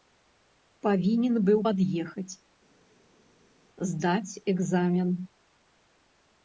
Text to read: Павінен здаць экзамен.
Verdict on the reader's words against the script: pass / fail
fail